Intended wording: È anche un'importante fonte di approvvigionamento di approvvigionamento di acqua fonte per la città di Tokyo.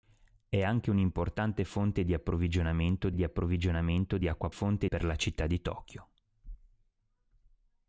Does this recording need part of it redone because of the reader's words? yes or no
no